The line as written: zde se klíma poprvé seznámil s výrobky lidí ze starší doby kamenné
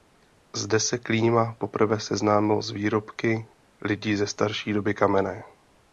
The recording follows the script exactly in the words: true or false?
true